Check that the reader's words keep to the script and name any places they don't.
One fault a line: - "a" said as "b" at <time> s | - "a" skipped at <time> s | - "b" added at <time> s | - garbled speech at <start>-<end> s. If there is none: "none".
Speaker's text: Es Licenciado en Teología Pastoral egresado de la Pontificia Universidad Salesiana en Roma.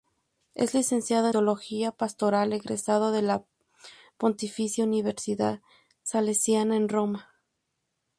- "en" skipped at 1.3 s